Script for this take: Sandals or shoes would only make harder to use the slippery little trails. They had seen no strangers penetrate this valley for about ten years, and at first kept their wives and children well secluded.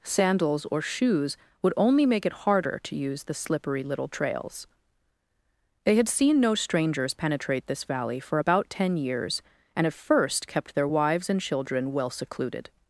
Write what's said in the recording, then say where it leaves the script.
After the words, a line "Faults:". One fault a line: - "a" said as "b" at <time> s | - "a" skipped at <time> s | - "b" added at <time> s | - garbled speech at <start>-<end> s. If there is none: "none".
Sandals or shoes would only make it harder to use the slippery little trails. They had seen no strangers penetrate this valley for about ten years, and at first kept their wives and children well secluded.
Faults:
- "it" added at 2.2 s